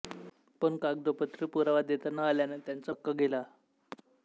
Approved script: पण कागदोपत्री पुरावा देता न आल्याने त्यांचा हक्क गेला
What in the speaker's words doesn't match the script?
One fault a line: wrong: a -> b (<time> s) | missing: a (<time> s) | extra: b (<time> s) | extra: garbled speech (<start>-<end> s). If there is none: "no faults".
no faults